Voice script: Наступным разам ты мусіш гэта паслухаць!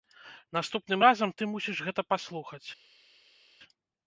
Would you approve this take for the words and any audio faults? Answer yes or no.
yes